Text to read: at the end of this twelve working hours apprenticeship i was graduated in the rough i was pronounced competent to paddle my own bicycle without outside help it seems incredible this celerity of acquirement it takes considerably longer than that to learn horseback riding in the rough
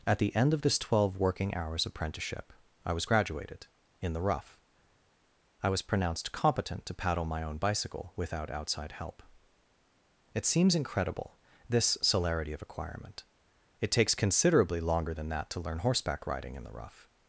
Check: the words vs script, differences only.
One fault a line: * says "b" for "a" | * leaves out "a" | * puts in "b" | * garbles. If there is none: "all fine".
all fine